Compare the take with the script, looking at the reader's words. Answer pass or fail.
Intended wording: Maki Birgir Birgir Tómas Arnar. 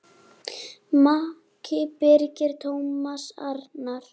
fail